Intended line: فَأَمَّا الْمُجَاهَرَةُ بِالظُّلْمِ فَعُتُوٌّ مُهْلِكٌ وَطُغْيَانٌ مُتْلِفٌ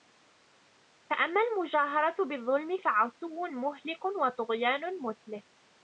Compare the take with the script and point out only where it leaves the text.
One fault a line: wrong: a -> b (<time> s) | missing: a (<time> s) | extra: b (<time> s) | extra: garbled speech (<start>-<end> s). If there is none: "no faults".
no faults